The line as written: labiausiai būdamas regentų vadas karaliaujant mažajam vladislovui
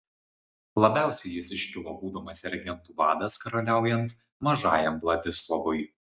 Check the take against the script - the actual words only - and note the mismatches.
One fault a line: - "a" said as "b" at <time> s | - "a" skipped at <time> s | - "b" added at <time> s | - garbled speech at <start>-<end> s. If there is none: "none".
- "jis iškilo" added at 1.3 s